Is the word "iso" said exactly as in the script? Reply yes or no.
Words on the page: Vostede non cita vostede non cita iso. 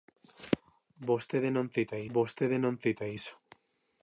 yes